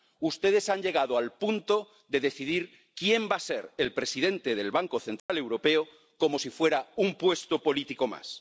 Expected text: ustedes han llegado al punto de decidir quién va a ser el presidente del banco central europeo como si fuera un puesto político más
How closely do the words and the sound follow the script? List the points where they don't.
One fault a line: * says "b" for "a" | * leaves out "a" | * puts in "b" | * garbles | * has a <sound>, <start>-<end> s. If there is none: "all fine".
* has a dropout, 5.2-5.3 s